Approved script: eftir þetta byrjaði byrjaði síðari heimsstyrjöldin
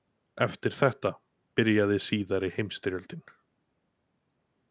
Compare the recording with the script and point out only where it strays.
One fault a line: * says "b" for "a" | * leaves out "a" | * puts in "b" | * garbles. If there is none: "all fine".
* leaves out "byrjaði"